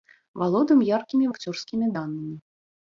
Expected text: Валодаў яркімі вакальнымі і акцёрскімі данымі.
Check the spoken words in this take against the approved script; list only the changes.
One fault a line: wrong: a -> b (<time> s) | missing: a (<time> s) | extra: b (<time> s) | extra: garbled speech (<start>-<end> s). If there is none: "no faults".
missing: вакальнымі (1.3 s)